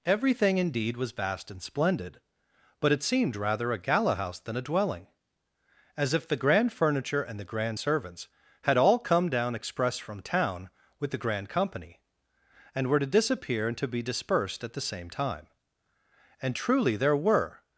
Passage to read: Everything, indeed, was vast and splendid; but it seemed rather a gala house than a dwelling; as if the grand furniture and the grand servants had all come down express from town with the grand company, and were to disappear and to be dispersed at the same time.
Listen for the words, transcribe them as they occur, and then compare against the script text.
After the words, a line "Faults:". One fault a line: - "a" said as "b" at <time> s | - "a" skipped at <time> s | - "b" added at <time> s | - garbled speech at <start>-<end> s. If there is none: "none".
Everything, indeed, was vast and splendid; but it seemed rather a gala house than a dwelling; as if the grand furniture and the grand servants had all come down express from town with the grand company, and were to disappear and to be dispersed at the same time. And truly there were
Faults:
- "And truly there were" added at 16.4 s